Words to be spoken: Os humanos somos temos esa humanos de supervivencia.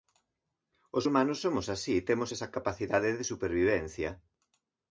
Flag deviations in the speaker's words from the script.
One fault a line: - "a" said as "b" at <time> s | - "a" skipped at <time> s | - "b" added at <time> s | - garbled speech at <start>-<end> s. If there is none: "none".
- "así" added at 1.7 s
- "humanos" said as "capacidade" at 2.6 s